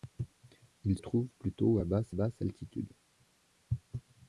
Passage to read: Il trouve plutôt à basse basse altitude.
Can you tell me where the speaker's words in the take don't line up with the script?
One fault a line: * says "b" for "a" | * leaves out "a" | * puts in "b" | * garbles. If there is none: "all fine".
all fine